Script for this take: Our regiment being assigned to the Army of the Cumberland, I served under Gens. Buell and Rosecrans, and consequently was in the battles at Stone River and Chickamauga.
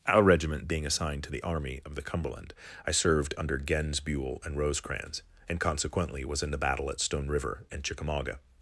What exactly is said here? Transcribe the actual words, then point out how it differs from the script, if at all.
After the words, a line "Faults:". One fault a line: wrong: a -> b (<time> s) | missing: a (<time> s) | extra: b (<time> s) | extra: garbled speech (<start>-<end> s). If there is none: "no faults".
Our regiment being assigned to the Army of the Cumberland, I served under Gens. Buell and Rosecrans, and consequently was in the battle at Stone River and Chickamauga.
Faults:
wrong: battles -> battle (6.6 s)